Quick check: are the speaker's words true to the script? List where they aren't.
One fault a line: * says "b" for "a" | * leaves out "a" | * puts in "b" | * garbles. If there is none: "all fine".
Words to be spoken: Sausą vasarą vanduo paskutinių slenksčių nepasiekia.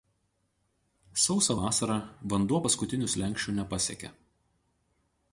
all fine